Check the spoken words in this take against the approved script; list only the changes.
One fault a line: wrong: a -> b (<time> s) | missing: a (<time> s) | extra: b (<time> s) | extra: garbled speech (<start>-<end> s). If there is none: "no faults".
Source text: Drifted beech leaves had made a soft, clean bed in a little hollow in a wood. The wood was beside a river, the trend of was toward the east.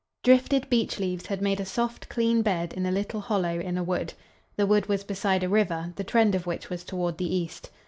extra: which (6.5 s)